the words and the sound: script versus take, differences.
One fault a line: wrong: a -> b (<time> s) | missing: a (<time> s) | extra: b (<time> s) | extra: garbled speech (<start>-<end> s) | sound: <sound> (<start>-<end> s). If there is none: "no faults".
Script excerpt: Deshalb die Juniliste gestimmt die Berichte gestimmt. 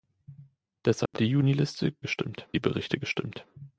sound: dropout (1.1-1.1 s)